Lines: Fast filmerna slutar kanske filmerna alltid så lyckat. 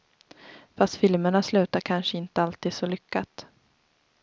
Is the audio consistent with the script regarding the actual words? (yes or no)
no